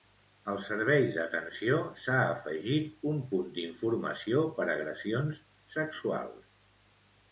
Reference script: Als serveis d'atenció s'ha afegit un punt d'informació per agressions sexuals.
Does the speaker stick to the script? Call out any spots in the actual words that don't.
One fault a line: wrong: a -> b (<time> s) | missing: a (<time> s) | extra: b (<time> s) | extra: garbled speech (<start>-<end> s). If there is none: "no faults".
no faults